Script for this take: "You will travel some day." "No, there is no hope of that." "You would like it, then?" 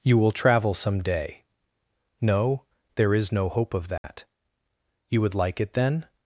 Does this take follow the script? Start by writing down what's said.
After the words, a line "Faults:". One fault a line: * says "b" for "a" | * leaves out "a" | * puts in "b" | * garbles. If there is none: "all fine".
"You will travel some day." "No, there is no hope of that." "You would like it, then?"
Faults:
all fine